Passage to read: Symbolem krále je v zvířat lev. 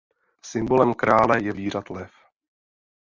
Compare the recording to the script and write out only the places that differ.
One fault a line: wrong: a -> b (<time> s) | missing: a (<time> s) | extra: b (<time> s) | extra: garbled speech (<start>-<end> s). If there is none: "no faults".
no faults